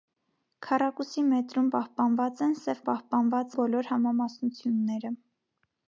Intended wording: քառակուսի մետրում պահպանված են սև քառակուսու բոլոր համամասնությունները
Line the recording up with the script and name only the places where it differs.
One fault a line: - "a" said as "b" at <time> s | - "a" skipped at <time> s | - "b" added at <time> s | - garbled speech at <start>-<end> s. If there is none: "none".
- "քառակուսու" said as "պահպանված" at 2.9 s